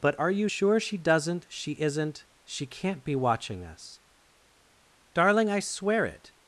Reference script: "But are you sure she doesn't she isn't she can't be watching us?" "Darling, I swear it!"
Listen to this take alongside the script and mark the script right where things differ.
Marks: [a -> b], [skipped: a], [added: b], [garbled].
"But are you sure she doesn't she isn't she can't be watching us?" "Darling, I swear it!"